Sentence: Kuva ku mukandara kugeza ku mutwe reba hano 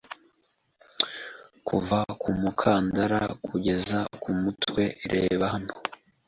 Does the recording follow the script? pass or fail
pass